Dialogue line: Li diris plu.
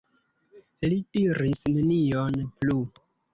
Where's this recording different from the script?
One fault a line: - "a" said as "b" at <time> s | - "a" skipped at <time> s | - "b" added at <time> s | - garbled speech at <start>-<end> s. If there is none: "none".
- "nenion" added at 1.8 s